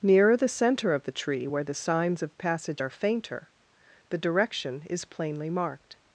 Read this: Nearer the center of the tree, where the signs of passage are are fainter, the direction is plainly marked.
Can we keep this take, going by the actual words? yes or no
no